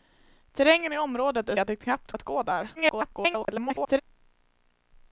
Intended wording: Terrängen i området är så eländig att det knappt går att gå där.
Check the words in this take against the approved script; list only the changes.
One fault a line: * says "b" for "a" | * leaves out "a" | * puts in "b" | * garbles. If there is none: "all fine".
* leaves out "så eländig"
* leaves out "går"
* garbles